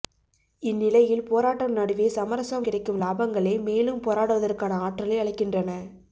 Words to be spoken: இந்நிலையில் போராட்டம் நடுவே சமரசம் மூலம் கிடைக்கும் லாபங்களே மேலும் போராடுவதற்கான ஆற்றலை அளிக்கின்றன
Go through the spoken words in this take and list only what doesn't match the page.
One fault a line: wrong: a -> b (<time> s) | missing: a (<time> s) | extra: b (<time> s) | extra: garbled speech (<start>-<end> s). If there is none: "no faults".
missing: மூலம் (2.6 s)